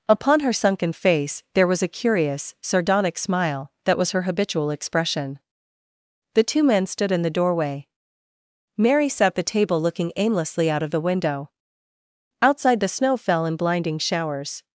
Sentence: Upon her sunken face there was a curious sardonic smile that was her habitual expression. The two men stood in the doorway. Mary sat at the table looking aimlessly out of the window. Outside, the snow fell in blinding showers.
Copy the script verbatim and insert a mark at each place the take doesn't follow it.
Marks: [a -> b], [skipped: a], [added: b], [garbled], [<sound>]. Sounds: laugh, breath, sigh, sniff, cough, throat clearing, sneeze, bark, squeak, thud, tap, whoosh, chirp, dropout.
Upon her sunken face there was a curious sardonic smile that was her habitual expression. The two men stood in the doorway. Mary sat [skipped: at] the table looking aimlessly out of the window. Outside, the snow fell in blinding showers.